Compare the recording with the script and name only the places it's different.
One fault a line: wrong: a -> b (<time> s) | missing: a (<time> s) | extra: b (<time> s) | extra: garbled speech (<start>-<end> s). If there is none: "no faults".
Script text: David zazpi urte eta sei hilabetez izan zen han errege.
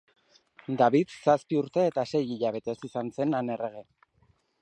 no faults